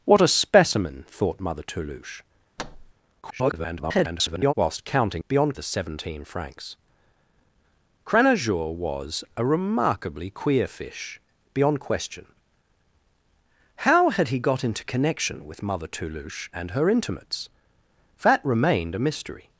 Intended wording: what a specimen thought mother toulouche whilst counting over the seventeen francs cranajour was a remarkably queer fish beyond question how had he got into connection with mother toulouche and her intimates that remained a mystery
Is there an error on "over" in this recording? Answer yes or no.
yes